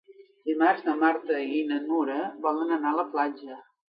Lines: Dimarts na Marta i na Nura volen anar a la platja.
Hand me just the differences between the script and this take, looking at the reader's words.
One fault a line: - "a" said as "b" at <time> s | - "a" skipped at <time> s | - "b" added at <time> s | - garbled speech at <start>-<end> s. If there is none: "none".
none